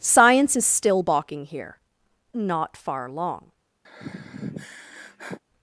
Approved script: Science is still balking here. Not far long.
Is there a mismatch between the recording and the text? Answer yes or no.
no